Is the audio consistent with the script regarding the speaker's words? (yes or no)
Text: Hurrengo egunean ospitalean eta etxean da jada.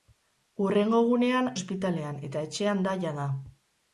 yes